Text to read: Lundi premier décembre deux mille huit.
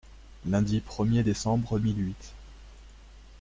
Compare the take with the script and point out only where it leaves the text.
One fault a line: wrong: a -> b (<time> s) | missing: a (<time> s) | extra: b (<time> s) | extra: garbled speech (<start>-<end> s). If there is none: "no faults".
missing: deux (1.8 s)